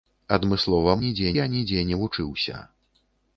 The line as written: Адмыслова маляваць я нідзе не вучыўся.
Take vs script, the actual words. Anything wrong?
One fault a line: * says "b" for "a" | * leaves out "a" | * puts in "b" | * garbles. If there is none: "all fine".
* says "нідзе" for "маляваць"